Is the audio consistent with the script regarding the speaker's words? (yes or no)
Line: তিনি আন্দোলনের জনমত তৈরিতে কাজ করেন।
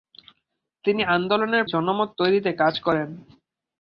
yes